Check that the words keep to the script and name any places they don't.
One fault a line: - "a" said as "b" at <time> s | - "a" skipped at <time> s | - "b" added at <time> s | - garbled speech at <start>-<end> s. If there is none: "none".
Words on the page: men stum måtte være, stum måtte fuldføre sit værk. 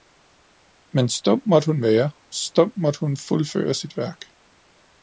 - "hun" added at 1.7 s
- "hun" added at 3.0 s